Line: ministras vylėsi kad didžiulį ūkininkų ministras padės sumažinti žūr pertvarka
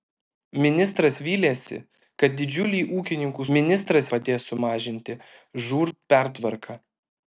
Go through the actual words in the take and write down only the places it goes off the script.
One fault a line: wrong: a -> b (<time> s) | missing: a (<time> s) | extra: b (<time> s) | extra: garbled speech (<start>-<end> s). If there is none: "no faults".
no faults